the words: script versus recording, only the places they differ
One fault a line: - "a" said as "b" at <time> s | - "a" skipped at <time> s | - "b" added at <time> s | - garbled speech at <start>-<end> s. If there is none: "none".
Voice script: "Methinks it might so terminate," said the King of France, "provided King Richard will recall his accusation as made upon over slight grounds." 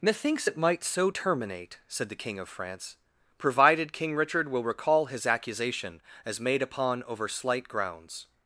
none